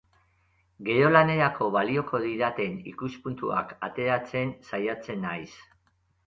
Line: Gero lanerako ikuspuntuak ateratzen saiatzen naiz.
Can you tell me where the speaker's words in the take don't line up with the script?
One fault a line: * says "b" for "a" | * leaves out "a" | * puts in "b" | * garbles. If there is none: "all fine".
* puts in "balioko didaten"